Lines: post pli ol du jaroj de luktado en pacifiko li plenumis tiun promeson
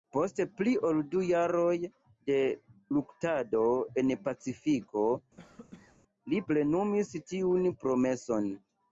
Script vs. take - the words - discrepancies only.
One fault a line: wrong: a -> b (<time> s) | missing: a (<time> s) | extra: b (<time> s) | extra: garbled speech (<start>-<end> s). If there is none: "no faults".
no faults